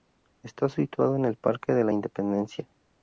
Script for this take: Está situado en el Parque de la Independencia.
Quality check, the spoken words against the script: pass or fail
pass